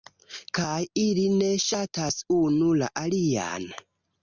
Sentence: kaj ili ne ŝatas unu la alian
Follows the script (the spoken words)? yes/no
yes